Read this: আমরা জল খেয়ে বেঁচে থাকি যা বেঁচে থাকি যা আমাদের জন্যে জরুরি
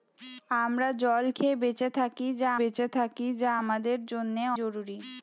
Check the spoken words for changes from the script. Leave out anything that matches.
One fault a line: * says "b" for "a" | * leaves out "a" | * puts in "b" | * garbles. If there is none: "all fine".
all fine